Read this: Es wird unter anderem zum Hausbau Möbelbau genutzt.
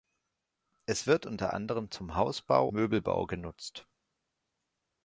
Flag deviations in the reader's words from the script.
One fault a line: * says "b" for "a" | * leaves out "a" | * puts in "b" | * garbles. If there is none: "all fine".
all fine